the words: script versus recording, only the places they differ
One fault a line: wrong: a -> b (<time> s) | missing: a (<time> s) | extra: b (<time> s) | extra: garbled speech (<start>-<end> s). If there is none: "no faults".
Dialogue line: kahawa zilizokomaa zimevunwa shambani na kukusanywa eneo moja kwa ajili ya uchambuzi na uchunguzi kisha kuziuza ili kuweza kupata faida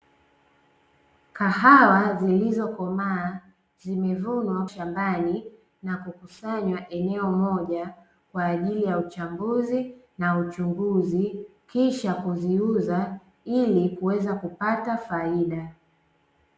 no faults